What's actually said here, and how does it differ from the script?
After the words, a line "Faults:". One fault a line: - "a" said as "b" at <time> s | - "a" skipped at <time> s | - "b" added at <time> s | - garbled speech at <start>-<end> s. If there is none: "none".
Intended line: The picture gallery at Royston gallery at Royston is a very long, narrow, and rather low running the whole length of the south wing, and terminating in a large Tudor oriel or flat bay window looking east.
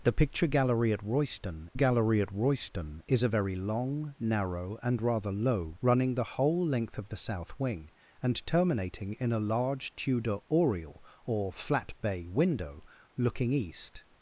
The picture gallery at Royston gallery at Royston is a very long, narrow, and rather low running the whole length of the south wing, and terminating in a large Tudor oriel or flat bay window looking east.
Faults:
none